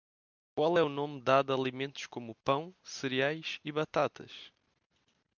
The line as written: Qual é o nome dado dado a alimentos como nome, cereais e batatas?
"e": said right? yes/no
yes